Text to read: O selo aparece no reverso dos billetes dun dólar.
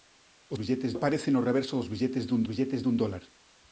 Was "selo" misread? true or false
true